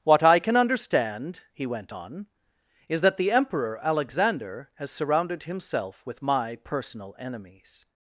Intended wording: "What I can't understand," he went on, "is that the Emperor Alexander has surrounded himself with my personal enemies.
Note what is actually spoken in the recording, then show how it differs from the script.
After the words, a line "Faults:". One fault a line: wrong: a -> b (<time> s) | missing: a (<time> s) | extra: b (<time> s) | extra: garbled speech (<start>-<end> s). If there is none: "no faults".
"What I can understand," he went on, "is that the Emperor Alexander has surrounded himself with my personal enemies.
Faults:
wrong: can't -> can (0.4 s)